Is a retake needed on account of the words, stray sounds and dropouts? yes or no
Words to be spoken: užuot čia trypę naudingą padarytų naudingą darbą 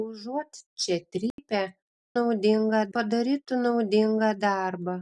yes